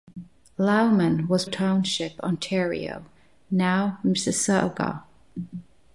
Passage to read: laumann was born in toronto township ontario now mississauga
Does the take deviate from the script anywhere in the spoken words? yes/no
yes